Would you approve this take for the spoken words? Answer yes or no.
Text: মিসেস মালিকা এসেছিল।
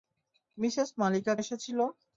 yes